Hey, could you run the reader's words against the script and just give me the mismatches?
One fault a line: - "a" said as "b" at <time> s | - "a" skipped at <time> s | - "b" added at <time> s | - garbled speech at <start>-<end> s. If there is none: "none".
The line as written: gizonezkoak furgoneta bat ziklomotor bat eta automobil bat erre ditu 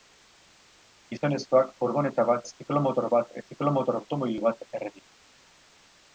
- "eta" said as "ziklomotor" at 3.5 s